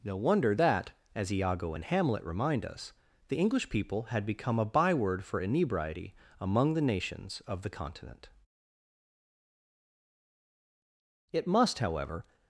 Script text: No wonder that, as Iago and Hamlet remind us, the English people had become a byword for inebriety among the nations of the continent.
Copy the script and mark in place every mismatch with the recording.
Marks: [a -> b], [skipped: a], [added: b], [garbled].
No wonder that, as Iago and Hamlet remind us, the English people had become a byword for inebriety among the nations of the continent. [added: It must however]